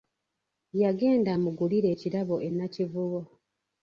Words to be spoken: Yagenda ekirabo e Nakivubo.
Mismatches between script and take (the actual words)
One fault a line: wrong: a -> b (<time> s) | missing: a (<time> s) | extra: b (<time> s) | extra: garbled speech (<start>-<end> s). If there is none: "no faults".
extra: amugulire (1.3 s)